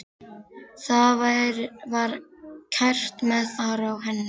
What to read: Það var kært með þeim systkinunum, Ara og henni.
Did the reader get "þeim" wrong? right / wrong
wrong